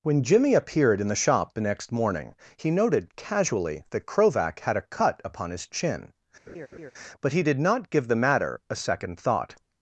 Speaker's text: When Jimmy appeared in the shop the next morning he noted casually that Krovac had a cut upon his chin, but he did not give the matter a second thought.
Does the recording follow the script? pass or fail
pass